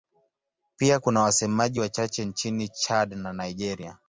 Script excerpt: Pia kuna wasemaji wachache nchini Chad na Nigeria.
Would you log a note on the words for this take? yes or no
no